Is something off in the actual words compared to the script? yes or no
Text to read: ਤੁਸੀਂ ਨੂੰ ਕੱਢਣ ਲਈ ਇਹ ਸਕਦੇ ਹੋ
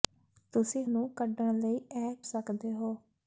no